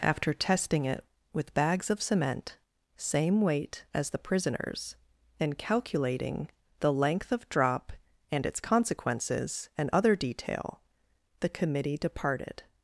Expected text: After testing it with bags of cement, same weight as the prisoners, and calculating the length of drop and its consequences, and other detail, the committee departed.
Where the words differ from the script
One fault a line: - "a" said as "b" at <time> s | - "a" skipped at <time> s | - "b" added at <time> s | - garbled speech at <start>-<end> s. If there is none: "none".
none